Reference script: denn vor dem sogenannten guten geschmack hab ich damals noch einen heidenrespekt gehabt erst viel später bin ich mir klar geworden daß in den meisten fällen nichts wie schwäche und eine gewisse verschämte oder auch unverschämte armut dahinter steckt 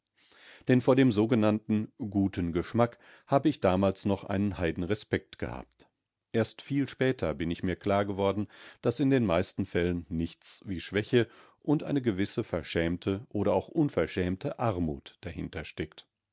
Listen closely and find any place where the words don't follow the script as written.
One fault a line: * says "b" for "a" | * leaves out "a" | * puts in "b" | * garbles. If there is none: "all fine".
all fine